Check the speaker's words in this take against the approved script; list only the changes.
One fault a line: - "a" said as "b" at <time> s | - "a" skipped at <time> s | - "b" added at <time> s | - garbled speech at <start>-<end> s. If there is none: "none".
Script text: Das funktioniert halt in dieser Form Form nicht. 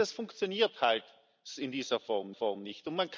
none